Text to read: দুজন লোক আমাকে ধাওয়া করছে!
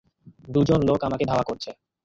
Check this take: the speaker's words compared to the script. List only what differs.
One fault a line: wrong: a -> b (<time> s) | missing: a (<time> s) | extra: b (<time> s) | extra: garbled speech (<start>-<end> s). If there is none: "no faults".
no faults